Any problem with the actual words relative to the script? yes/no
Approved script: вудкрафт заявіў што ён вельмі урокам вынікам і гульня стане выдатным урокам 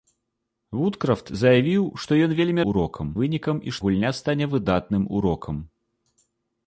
no